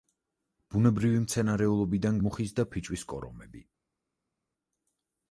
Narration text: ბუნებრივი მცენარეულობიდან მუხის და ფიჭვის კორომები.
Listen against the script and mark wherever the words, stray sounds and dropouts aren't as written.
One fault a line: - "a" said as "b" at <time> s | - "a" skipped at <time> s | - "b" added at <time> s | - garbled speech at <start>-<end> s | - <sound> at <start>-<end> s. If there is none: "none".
none